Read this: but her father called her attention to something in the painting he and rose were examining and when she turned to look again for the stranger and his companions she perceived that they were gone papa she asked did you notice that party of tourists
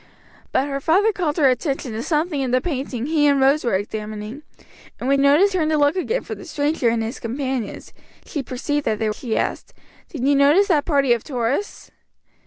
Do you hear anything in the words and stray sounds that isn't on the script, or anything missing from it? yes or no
yes